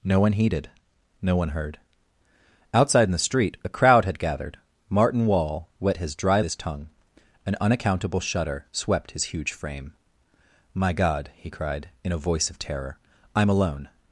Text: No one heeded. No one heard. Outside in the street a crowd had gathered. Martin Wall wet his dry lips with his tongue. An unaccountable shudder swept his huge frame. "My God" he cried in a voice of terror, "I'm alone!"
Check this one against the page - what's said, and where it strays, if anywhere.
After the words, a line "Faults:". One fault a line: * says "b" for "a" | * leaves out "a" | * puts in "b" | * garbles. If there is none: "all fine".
No one heeded. No one heard. Outside in the street a crowd had gathered. Martin Wall wet his dry his tongue. An unaccountable shudder swept his huge frame. "My God" he cried in a voice of terror, "I'm alone!"
Faults:
* leaves out "lips with"